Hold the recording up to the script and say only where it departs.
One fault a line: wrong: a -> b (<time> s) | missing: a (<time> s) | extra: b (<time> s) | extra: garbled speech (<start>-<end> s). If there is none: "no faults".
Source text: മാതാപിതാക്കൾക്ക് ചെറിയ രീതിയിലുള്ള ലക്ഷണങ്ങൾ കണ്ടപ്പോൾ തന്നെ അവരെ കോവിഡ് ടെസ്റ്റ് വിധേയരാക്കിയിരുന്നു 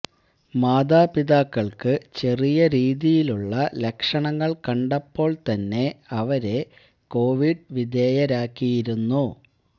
missing: ടെസ്റ്റ് (7.7 s)